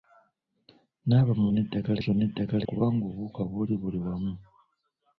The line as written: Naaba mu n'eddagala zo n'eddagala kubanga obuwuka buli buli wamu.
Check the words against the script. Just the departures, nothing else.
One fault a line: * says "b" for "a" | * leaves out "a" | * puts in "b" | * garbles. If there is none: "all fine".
all fine